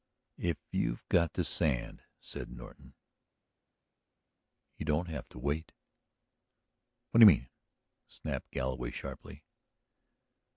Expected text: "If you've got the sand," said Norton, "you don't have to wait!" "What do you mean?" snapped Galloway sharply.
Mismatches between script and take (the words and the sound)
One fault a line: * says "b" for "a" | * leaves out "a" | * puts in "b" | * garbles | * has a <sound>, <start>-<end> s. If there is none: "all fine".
all fine